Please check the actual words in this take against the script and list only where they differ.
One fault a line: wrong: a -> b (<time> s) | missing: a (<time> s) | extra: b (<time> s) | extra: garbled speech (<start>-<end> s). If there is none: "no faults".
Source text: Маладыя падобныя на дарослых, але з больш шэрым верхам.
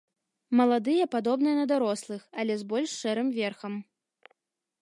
no faults